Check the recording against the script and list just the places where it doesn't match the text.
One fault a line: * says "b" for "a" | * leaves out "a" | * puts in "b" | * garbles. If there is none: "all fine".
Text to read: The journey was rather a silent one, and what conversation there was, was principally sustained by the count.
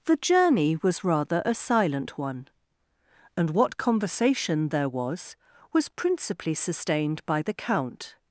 all fine